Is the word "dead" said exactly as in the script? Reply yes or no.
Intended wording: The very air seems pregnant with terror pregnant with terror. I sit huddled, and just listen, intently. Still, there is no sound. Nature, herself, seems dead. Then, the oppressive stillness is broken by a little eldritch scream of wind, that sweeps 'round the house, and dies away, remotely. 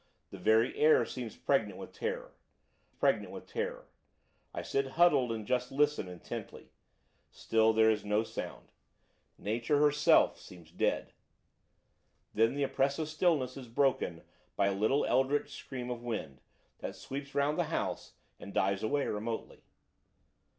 yes